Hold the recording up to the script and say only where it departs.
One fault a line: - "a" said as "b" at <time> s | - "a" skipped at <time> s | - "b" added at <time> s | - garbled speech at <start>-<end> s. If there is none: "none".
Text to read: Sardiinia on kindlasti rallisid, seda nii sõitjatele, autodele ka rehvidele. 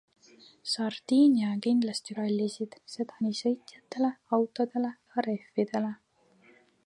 none